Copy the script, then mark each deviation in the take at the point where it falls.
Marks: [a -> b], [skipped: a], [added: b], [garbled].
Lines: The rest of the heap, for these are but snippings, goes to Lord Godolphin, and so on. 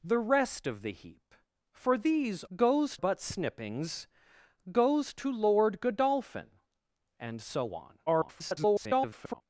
The rest of the heap, for these [are -> goes] but snippings, goes to Lord Godolphin, and so on. [garbled]